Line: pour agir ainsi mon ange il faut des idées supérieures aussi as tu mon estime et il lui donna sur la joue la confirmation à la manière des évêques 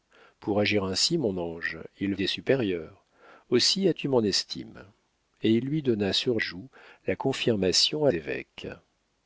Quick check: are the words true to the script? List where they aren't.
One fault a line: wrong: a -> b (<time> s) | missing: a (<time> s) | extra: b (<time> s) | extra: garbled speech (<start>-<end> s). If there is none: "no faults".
missing: faut des (2.1 s)
missing: la (6.4 s)
missing: la manière des (8.1 s)